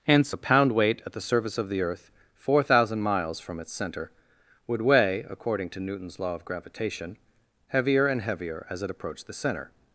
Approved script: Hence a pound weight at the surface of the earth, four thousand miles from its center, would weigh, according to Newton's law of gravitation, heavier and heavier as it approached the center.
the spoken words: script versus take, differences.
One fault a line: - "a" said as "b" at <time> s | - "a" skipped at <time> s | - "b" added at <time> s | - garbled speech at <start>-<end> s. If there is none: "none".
none